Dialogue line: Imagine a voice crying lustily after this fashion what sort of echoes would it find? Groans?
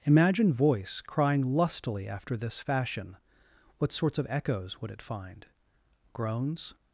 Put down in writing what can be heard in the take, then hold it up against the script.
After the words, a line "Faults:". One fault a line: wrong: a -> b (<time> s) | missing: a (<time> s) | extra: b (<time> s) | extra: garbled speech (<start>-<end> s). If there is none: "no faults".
Imagine voice crying lustily after this fashion what sorts of echoes would it find? Groans?
Faults:
missing: a (0.5 s)
wrong: sort -> sorts (3.9 s)